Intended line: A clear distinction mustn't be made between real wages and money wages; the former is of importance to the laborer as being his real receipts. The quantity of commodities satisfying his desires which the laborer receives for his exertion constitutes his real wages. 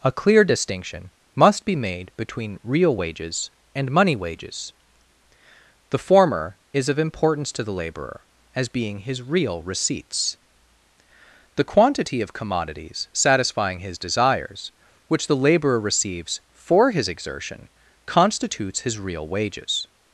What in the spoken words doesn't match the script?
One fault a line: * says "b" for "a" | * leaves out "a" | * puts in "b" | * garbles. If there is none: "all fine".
* says "must" for "mustn't"